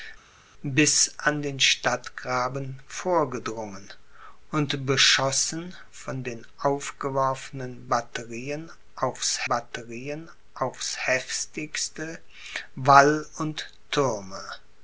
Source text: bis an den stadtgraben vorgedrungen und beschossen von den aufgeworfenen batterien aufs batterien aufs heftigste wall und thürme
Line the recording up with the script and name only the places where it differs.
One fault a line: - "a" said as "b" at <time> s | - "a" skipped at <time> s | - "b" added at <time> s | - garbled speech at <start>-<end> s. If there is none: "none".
none